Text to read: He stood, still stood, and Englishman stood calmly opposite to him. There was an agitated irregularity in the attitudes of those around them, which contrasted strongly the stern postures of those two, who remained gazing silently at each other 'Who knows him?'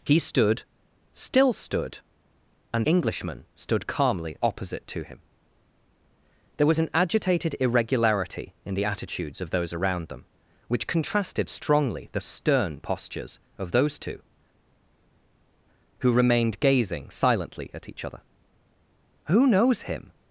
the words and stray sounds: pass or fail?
pass